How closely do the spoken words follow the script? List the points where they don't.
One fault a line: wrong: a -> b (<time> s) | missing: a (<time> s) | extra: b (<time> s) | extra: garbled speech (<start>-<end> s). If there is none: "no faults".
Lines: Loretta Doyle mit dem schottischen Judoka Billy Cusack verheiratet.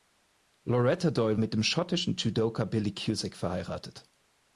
no faults